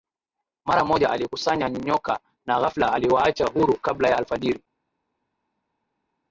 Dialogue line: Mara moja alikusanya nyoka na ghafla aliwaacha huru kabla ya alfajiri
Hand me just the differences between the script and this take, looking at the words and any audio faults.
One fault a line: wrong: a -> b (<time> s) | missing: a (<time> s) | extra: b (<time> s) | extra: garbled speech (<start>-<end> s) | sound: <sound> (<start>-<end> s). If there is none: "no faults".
no faults